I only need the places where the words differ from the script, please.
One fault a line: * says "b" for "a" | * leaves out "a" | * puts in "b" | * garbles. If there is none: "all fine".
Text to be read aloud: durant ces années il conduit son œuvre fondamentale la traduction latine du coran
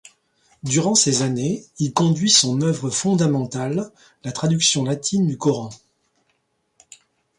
all fine